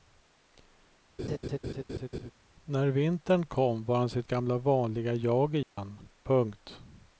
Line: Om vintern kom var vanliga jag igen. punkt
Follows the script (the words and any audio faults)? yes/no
no